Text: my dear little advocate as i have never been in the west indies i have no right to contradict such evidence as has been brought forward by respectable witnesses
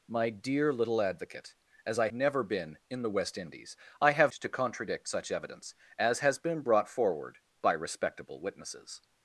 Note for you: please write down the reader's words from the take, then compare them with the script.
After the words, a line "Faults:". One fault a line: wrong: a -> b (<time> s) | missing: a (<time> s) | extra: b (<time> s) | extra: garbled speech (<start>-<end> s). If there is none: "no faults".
my dear little advocate as i never been in the west indies i have to contradict such evidence as has been brought forward by respectable witnesses
Faults:
missing: have (2.1 s)
missing: no right (4.3 s)